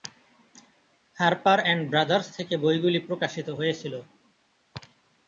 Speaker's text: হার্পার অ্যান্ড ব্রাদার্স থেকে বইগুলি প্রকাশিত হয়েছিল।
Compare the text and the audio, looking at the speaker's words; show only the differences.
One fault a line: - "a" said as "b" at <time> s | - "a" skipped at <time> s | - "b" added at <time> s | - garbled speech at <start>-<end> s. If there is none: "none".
none